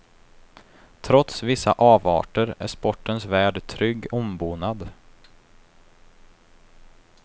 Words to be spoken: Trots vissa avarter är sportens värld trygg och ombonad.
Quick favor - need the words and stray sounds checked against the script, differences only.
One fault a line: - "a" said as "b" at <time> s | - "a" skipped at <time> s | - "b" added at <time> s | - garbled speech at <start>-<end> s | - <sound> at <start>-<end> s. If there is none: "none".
- "och" skipped at 4.1 s